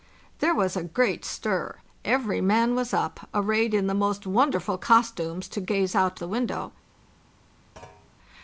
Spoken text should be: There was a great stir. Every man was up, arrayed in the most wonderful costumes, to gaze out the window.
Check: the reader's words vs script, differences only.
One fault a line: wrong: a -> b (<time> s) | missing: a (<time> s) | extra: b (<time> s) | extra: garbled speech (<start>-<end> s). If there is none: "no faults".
no faults